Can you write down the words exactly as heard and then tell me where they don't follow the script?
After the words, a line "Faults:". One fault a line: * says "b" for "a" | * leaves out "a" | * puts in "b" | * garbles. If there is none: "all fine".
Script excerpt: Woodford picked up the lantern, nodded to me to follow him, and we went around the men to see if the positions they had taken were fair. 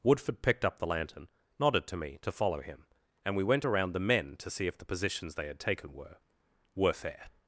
Woodford picked up the lantern, nodded to me to follow him, and we went around the men to see if the positions they had taken were were fair.
Faults:
* puts in "were"